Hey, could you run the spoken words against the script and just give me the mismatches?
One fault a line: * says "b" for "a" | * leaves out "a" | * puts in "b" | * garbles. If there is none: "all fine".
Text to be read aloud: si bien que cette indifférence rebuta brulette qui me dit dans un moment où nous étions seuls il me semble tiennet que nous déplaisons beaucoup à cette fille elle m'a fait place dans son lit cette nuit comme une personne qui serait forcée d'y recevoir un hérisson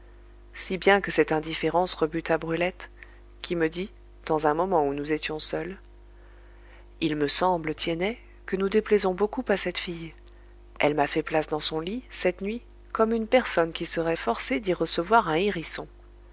all fine